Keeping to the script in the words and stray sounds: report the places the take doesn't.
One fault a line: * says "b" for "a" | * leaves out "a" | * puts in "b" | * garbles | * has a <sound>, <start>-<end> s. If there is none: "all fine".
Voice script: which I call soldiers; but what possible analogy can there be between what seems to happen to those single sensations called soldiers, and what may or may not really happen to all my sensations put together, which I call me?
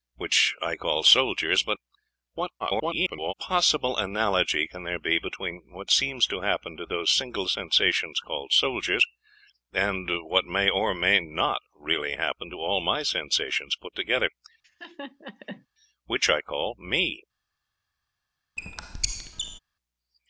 * garbles
* has a laugh, 14.6-15.7 s
* has a squeak, 18.6-19.6 s